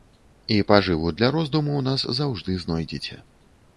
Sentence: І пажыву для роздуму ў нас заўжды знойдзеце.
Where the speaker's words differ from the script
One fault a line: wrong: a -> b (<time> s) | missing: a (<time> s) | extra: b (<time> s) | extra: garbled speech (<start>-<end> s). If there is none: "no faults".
no faults